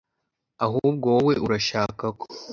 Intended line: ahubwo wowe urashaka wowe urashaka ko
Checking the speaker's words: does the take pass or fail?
fail